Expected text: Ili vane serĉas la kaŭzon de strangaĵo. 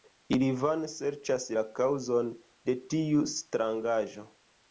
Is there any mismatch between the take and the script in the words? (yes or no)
yes